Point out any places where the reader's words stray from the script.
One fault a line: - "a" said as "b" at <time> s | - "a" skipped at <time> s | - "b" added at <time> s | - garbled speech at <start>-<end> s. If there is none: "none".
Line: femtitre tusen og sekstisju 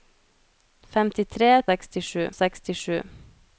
- "tusen" said as "sekstisju" at 1.7 s